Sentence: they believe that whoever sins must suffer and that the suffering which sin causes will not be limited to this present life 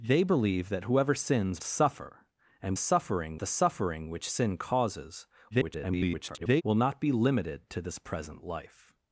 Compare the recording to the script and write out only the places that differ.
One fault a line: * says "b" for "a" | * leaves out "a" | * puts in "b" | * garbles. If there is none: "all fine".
* leaves out "must"
* says "suffering" for "that"
* garbles